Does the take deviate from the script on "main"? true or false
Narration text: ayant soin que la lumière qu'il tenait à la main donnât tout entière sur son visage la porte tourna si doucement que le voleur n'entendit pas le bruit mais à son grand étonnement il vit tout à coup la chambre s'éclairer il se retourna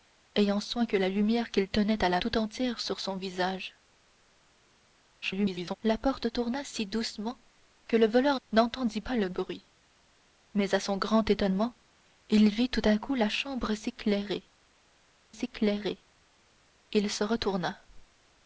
true